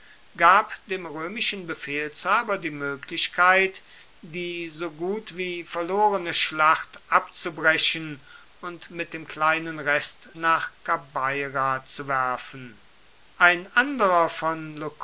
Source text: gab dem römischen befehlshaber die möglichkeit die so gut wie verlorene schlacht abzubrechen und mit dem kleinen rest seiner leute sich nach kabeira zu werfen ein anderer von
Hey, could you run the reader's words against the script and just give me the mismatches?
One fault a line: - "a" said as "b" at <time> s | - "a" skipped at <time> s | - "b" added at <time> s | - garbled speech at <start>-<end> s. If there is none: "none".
- "seiner leute sich" skipped at 10.3 s